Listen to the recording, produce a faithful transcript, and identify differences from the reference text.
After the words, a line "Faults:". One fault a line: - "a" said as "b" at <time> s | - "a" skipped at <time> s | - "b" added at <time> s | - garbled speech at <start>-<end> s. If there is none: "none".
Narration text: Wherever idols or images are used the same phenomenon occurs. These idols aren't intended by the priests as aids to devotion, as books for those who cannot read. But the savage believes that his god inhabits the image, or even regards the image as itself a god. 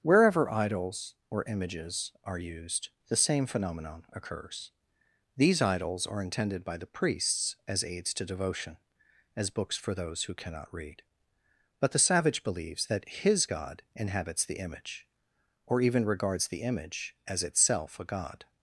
Wherever idols or images are used the same phenomenon occurs. These idols are intended by the priests as aids to devotion, as books for those who cannot read. But the savage believes that his god inhabits the image, or even regards the image as itself a god.
Faults:
- "aren't" said as "are" at 6.1 s